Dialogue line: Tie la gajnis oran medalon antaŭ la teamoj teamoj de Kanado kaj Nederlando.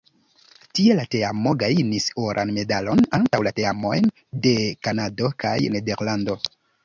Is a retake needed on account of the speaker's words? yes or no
yes